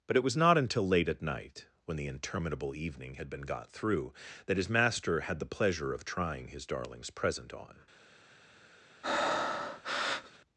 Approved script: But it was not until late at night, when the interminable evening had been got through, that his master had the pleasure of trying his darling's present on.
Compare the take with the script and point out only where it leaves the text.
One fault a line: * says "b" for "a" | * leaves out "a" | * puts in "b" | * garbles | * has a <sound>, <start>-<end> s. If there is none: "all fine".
* has a breath, 9.0-10.4 s